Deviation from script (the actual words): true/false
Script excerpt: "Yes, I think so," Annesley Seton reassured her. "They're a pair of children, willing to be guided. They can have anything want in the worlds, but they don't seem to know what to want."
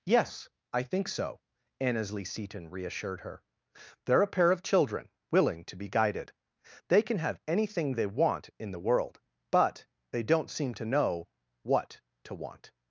true